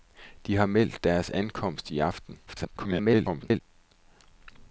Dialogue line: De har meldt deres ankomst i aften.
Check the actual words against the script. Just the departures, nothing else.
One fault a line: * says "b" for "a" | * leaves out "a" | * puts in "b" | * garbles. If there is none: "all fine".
* garbles